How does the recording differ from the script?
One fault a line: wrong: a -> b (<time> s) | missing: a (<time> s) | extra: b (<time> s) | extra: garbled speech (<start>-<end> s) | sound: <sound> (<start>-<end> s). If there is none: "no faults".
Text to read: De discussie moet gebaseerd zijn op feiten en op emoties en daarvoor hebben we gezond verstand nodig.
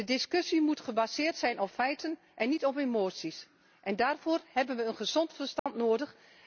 extra: niet (2.5 s)
sound: dropout (5.6-5.7 s)